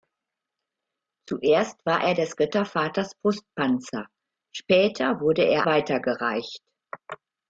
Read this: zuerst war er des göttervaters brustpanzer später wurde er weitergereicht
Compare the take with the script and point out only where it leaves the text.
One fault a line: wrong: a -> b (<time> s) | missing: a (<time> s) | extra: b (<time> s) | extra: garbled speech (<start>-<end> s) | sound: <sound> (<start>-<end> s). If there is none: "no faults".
no faults